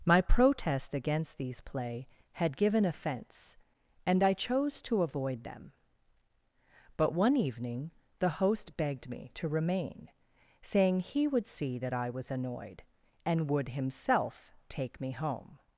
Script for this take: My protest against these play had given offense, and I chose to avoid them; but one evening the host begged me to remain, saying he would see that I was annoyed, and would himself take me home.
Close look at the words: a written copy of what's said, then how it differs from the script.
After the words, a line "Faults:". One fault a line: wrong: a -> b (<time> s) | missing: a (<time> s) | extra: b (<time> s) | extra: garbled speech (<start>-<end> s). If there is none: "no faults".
My protest against these play had given offense, and I chose to avoid them; but one evening the host begged me to remain, saying he would see that I was annoyed, and would himself take me home.
Faults:
no faults